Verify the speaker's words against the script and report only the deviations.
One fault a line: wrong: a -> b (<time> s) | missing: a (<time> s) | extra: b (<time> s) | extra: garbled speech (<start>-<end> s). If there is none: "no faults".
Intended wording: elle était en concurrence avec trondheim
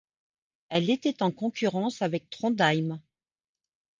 no faults